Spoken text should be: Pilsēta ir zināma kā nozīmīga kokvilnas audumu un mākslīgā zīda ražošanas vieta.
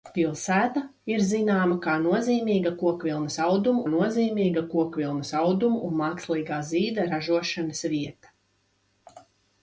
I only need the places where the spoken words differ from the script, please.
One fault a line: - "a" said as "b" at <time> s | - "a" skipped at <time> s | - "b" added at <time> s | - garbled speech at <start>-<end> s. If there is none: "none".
- "nozīmīga kokvilnas audumu" added at 3.9 s